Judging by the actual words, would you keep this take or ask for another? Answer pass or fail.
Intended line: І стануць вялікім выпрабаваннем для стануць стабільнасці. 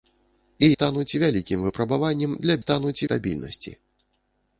pass